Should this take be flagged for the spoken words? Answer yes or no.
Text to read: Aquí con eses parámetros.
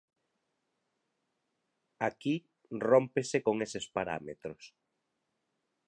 yes